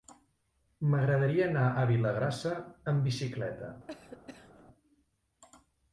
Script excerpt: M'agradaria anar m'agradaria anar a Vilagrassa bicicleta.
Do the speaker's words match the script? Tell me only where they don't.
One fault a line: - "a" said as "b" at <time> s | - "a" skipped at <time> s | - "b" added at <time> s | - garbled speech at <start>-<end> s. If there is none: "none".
- "m'agradaria anar" skipped at 1.7 s
- "amb" added at 3.0 s